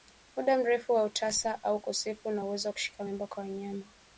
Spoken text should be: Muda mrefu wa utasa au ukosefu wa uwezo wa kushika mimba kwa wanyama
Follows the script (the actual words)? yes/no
yes